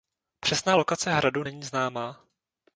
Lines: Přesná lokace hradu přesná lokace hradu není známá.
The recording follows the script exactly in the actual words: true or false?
false